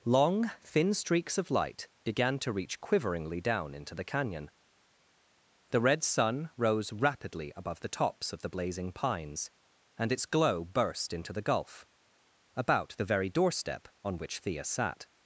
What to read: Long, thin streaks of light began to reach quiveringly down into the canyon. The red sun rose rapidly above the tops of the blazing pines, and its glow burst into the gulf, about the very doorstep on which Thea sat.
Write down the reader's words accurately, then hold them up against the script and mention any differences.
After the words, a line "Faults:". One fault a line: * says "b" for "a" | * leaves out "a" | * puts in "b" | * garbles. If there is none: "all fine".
Long, thin streaks of light began to reach quiveringly down into the canyon. The red sun rose rapidly above the tops of the blazing pines, and its glow burst into the gulf, about the very doorstep on which Thea sat.
Faults:
all fine